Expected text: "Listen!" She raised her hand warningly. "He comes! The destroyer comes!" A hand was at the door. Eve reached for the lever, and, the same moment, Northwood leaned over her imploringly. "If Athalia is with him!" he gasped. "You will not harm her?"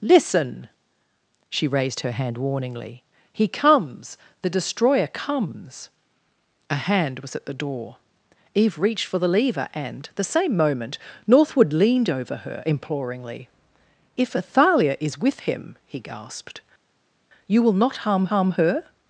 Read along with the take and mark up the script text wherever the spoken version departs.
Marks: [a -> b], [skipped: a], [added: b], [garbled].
"Listen!" She raised her hand warningly. "He comes! The destroyer comes!" A hand was at the door. Eve reached for the lever, and, the same moment, Northwood leaned over her imploringly. "If Athalia is with him!" he gasped. "You will not harm [added: harm] her?"